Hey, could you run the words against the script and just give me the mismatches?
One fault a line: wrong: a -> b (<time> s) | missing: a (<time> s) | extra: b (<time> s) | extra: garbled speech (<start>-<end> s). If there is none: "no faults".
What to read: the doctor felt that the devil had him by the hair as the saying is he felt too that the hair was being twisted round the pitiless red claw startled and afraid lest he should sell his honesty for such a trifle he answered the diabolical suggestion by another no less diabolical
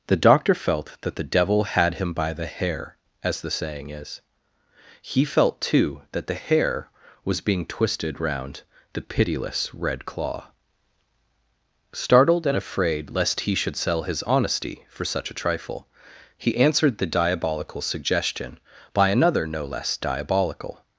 no faults